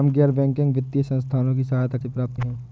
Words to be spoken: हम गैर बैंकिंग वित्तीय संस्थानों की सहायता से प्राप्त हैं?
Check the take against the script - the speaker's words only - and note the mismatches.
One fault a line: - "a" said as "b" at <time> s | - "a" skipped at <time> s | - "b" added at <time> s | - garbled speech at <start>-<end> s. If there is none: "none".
none